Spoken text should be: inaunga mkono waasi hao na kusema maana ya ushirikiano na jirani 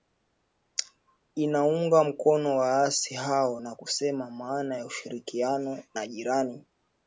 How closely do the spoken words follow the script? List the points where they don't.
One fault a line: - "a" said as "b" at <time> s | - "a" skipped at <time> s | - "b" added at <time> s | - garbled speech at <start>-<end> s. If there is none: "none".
none